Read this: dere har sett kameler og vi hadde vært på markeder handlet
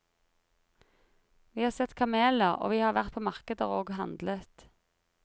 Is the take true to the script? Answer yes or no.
no